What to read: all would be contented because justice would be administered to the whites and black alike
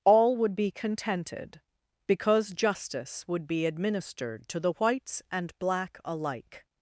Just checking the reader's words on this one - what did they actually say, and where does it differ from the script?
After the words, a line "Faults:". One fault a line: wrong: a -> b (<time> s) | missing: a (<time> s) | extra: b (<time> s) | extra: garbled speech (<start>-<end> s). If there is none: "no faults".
all would be contented because justice would be administered to the whites and black alike
Faults:
no faults